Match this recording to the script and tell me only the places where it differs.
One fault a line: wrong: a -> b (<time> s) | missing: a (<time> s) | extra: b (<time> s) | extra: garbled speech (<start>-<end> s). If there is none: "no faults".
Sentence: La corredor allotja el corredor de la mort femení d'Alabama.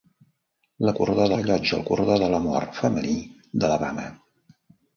no faults